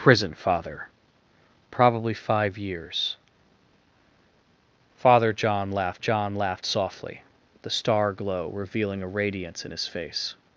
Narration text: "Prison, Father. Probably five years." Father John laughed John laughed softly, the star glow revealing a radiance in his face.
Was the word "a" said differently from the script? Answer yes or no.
no